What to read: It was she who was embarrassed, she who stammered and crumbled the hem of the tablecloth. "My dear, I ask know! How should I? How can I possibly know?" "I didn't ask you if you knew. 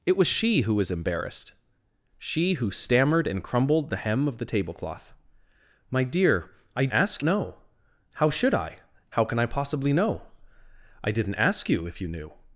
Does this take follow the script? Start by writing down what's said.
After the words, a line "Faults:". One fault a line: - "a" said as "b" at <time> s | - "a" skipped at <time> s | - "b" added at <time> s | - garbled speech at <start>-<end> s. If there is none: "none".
It was she who was embarrassed, she who stammered and crumbled the hem of the tablecloth. "My dear, I ask know! How should I? How can I possibly know?" "I didn't ask you if you knew.
Faults:
none